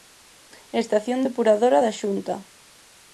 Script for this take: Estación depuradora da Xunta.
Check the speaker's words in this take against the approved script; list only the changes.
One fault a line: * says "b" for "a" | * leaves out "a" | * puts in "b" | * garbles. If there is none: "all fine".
all fine